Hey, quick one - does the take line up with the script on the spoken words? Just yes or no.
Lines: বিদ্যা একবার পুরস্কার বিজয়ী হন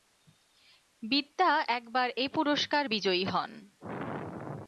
no